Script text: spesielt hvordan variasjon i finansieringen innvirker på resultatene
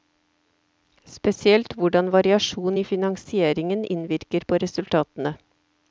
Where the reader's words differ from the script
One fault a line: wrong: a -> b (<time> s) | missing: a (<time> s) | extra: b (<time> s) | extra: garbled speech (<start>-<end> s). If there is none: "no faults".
no faults